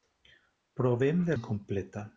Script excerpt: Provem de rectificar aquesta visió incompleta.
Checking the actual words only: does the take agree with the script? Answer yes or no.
no